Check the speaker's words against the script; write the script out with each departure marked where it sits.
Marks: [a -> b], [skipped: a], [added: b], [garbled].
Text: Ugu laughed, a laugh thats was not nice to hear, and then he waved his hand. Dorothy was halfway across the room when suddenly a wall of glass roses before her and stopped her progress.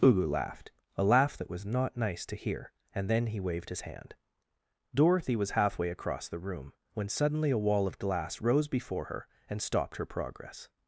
Ugu laughed, a laugh [thats -> that] was not nice to hear, and then he waved his hand. Dorothy was halfway across the room when suddenly a wall of glass [roses -> rose] before her and stopped her progress.